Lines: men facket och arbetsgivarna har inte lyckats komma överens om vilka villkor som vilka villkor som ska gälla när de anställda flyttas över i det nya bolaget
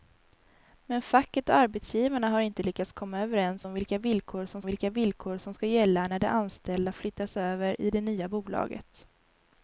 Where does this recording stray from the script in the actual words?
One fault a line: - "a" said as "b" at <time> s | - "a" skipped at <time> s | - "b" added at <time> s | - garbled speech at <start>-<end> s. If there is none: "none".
none